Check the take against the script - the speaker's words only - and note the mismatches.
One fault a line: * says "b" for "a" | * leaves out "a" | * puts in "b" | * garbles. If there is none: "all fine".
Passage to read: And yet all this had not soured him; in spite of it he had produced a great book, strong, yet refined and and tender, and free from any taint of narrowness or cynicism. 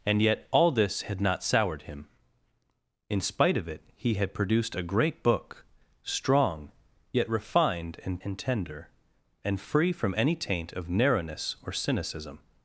all fine